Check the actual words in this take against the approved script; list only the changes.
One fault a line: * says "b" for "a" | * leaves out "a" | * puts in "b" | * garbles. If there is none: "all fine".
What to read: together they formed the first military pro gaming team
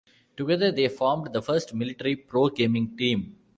all fine